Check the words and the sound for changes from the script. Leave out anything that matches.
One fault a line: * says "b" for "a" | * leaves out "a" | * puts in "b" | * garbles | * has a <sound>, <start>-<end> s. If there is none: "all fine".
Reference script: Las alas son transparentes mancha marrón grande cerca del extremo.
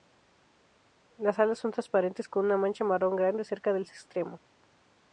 * puts in "con una"